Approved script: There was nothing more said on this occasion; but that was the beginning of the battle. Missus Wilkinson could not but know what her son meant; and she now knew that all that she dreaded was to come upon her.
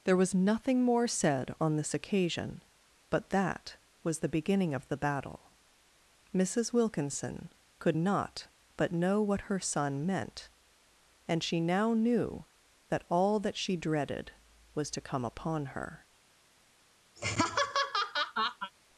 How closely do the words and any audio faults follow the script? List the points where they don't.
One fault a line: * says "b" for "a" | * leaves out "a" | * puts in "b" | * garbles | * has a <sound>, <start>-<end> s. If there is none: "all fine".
* has a laugh, 17.2-18.7 s